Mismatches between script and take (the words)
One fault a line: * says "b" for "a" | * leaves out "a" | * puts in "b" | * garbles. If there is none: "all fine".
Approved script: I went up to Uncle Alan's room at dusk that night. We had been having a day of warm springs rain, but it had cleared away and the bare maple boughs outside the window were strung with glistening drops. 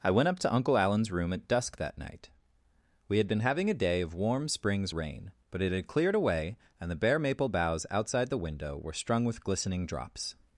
all fine